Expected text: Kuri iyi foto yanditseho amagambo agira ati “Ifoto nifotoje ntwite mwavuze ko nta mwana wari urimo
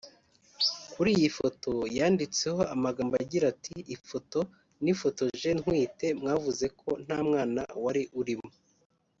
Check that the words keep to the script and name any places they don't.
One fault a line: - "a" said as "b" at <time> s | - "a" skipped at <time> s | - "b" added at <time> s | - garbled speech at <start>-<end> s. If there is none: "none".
none